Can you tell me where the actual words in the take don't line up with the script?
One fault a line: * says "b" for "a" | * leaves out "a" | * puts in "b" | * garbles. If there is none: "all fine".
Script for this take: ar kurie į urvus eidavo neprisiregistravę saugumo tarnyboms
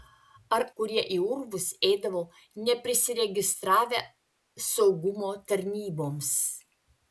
all fine